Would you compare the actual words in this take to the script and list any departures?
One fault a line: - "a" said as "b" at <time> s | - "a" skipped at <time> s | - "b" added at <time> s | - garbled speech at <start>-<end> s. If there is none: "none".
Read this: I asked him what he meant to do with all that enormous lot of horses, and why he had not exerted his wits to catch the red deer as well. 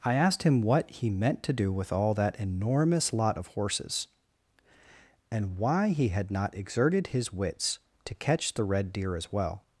none